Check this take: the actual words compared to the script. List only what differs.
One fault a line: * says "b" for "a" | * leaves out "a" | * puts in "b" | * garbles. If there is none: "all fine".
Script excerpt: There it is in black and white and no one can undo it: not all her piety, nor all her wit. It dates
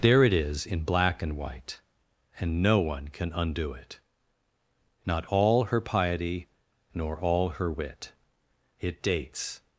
all fine